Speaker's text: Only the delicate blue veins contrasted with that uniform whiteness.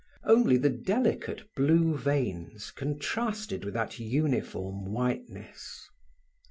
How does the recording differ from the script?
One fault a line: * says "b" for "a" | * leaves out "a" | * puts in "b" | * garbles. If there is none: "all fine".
all fine